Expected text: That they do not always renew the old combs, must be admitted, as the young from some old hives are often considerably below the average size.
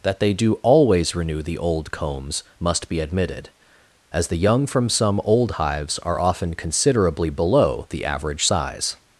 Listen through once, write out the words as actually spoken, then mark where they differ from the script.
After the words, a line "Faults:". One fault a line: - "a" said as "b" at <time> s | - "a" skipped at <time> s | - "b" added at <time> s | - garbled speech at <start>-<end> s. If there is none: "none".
That they do always renew the old combs, must be admitted, as the young from some old hives are often considerably below the average size.
Faults:
- "not" skipped at 0.5 s